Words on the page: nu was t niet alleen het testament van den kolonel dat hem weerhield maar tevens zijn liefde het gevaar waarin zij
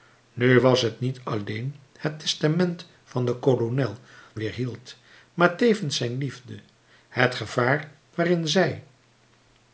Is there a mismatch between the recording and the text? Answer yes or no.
yes